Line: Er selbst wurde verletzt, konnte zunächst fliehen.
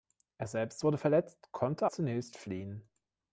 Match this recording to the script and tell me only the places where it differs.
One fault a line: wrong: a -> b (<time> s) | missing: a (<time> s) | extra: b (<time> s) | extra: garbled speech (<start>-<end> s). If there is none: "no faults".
no faults